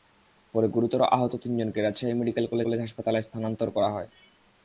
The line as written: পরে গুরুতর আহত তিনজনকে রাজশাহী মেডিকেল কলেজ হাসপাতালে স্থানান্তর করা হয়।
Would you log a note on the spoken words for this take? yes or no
yes